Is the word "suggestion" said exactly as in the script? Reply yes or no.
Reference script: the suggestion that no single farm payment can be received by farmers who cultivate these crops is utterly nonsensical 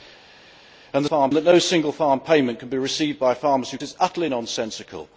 no